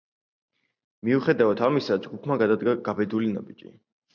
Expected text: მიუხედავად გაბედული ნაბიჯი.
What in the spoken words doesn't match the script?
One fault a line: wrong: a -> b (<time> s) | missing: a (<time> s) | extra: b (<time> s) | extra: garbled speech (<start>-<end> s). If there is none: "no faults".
extra: ამისა ჯგუფმა გადადგა (1.7 s)